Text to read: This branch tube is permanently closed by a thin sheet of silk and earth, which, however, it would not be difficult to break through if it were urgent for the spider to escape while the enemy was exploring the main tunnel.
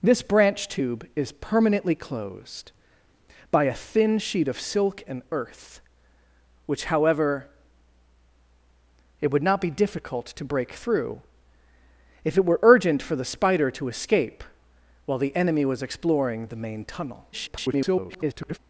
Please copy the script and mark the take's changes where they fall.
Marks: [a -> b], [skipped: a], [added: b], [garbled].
This branch tube is permanently closed by a thin sheet of silk and earth, which, however, it would not be difficult to break through if it were urgent for the spider to escape while the enemy was exploring the main tunnel. [garbled]